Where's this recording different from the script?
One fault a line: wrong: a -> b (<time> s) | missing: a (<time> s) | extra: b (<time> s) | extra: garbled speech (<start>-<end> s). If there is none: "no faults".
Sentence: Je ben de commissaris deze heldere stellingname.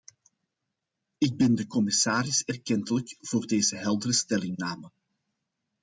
wrong: Je -> Ik (1.2 s)
extra: erkentelijk voor (2.4 s)